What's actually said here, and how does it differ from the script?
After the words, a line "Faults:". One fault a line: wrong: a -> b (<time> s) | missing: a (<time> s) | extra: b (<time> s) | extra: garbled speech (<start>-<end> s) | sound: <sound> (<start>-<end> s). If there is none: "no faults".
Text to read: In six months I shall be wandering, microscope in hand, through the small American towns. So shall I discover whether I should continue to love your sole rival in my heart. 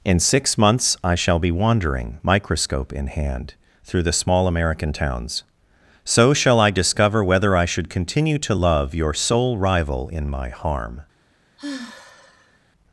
In six months I shall be wandering, microscope in hand, through the small American towns. So shall I discover whether I should continue to love your sole rival in my harm.
Faults:
wrong: heart -> harm (10.5 s)
sound: sigh (11.6-12.6 s)